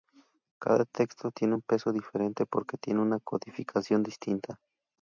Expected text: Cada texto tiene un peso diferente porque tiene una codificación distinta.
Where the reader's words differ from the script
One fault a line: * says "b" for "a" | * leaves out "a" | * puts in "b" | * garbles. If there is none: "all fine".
all fine